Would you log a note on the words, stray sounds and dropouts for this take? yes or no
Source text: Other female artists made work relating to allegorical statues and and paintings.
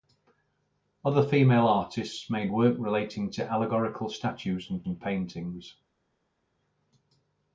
no